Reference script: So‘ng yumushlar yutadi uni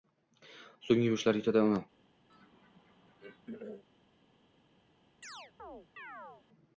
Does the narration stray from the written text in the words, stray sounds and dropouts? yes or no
yes